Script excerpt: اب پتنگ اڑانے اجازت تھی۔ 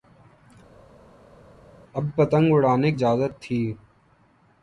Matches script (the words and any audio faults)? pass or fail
pass